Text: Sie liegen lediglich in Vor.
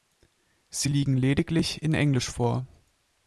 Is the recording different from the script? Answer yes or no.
yes